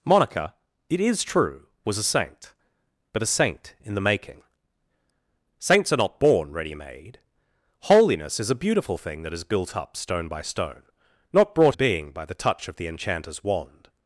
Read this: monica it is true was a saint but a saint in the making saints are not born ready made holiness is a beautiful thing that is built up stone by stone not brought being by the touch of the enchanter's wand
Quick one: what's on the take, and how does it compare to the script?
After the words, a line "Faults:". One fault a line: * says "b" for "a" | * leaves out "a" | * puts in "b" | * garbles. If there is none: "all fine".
monica it is true was a saint but a saint in the making saints are not born ready made holiness is a beautiful thing that is built up stone by stone not brought being by the touch of the enchanter's wand
Faults:
all fine